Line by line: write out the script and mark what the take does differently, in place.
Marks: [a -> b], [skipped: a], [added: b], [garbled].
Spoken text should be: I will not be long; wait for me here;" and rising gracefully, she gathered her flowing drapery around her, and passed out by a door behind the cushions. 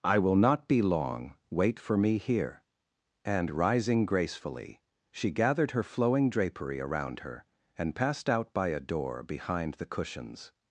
I will not be long; wait for me here;" and rising gracefully, she gathered her flowing drapery around her, and passed out by a door behind the cushions.